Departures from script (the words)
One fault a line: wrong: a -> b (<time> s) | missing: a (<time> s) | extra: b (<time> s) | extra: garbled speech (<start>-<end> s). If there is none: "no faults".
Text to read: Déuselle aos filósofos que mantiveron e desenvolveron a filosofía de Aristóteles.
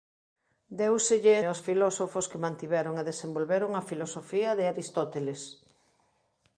no faults